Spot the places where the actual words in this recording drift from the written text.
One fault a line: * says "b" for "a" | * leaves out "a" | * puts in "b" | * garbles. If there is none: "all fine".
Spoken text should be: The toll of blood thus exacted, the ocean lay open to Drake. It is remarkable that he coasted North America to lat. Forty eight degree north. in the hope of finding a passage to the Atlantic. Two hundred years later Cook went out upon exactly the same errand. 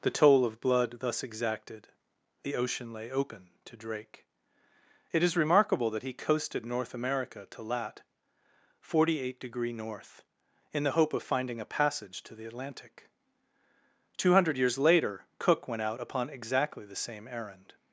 all fine